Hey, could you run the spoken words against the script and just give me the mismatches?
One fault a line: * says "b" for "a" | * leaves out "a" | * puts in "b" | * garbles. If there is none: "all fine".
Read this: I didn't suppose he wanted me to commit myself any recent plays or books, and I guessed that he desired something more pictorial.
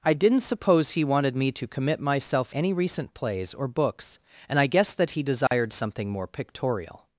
all fine